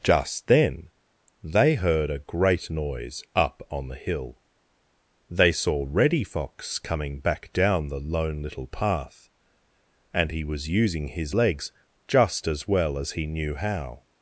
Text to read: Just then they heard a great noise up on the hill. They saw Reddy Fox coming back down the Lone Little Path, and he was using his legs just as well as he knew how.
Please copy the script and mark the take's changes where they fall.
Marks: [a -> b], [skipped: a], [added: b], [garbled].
Just then they heard a great noise up on the hill. They saw Reddy Fox coming back down the Lone Little Path, and he was using his legs just as well as he knew how.